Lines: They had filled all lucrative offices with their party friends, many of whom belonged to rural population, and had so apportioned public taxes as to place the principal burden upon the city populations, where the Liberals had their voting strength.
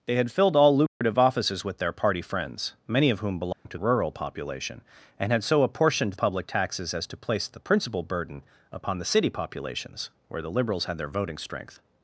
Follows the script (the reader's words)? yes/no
yes